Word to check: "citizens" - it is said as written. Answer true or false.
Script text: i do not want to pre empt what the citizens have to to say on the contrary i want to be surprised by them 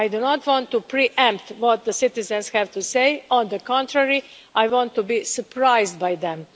true